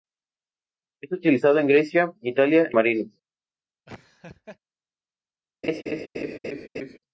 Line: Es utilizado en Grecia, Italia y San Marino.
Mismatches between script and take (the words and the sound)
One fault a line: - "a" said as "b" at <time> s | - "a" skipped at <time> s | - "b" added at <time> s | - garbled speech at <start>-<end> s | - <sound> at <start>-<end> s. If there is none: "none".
- "y San" skipped at 2.7 s
- laugh at 3.9-4.6 s
- laugh at 5.6-7.0 s